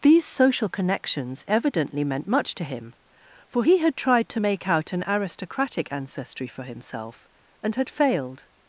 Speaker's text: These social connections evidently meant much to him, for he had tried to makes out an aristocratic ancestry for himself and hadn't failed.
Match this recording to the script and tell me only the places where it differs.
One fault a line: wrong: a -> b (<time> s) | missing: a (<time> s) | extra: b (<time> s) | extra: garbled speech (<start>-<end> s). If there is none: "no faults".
wrong: makes -> make (4.4 s)
wrong: hadn't -> had (7.8 s)